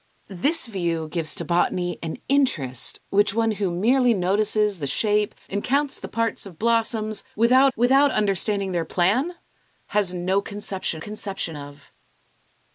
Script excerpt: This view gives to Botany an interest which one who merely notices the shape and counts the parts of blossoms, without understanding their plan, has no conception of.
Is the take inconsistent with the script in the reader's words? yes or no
yes